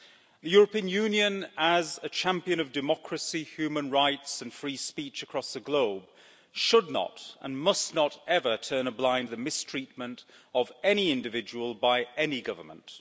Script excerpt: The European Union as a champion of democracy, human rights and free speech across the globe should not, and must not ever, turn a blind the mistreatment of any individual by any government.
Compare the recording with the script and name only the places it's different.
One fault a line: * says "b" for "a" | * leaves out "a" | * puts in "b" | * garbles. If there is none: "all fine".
all fine